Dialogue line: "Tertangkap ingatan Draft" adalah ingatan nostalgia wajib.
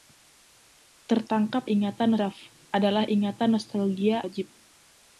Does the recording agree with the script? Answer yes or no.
yes